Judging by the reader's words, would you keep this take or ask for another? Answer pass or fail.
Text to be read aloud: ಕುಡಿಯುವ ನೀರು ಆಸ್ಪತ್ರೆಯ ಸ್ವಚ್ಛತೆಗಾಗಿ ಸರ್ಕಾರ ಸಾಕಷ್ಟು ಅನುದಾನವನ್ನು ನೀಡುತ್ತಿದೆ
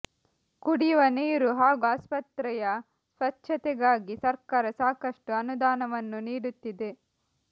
fail